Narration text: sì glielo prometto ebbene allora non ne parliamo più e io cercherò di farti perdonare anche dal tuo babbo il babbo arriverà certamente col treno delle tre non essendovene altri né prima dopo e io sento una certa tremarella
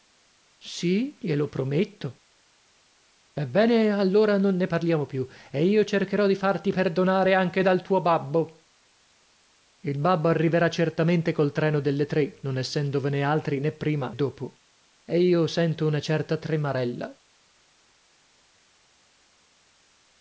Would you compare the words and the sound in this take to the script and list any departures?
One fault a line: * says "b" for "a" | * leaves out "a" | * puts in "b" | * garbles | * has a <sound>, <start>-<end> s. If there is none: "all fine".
all fine